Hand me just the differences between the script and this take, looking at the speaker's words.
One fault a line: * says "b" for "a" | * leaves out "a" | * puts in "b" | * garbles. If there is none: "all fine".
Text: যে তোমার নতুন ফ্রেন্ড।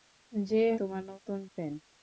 all fine